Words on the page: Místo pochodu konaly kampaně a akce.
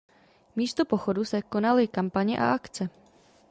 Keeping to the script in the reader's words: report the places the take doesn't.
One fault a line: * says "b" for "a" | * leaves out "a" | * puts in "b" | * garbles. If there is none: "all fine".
* puts in "se"